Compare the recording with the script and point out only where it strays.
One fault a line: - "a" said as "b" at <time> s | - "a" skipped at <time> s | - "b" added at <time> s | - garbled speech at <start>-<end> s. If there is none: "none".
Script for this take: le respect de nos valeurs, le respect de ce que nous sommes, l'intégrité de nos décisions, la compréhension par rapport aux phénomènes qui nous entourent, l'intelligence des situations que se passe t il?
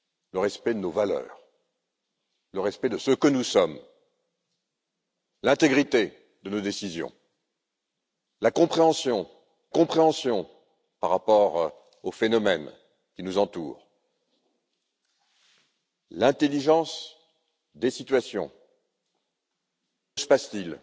- "compréhension" added at 9.7 s
- "que" skipped at 18.5 s